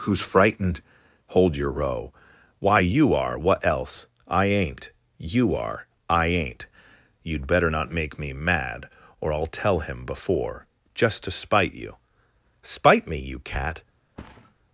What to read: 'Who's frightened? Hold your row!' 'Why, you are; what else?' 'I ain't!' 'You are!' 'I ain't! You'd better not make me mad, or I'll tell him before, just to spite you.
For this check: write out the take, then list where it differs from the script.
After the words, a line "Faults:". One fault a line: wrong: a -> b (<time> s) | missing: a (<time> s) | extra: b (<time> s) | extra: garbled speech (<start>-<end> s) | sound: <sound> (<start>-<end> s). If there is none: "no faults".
'Who's frightened? Hold your row!' 'Why, you are; what else?' 'I ain't!' 'You are!' 'I ain't! You'd better not make me mad, or I'll tell him before, just to spite you. 'Spite me, you cat
Faults:
extra: Spite me you cat (12.6 s)
sound: thud (14.2-14.5 s)